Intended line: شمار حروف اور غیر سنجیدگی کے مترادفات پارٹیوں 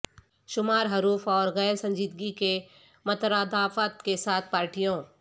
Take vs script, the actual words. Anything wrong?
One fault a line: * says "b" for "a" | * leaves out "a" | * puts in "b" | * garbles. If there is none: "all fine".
* puts in "کے ساتھ"